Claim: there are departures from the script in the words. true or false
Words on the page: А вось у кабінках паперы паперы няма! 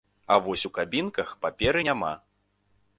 true